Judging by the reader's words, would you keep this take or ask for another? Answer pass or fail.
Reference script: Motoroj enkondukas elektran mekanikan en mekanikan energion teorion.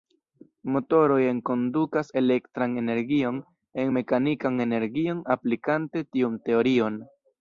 fail